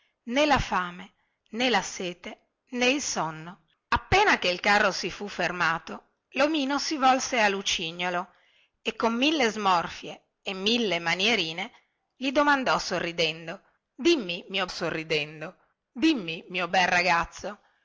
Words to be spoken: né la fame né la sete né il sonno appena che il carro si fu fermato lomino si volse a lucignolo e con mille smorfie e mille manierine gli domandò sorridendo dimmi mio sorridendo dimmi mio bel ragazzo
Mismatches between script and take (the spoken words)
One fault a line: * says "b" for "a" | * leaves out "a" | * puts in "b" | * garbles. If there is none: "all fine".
all fine